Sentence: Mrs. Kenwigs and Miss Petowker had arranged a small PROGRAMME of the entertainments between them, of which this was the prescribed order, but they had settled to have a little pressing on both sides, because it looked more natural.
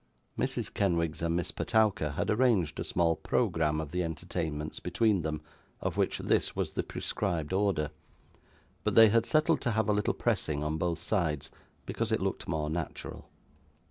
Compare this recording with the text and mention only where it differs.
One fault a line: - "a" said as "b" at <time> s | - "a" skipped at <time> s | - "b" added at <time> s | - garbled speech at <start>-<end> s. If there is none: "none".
none